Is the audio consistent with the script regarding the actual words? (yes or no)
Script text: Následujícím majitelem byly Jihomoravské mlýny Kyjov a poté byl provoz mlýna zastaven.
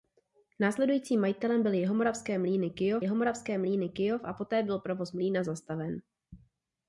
no